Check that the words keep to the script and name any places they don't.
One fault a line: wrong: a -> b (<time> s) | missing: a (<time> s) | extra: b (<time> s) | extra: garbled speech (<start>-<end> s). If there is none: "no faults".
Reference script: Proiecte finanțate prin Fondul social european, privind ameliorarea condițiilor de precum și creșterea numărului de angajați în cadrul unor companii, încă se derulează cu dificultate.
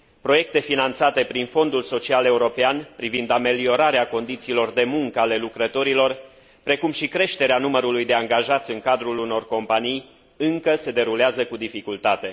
extra: muncă ale lucrătorilor (4.8 s)